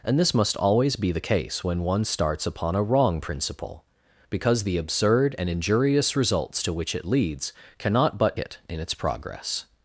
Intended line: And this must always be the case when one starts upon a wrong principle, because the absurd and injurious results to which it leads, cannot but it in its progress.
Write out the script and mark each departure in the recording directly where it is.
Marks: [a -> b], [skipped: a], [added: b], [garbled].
And this must always be the case when one starts upon a wrong principle, because the absurd and injurious results to which it leads, cannot but it in its progress.